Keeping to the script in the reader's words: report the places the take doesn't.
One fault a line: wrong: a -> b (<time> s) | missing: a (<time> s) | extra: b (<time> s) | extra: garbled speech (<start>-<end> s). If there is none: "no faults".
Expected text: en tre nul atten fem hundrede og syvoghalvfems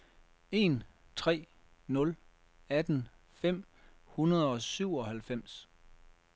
no faults